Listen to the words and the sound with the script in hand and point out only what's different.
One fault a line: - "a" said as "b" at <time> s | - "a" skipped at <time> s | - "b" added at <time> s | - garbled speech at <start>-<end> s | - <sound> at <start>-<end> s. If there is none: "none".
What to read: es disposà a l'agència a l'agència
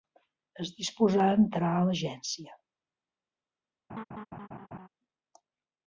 - "l'agència" said as "entrar" at 1.4 s
- laugh at 3.9-4.9 s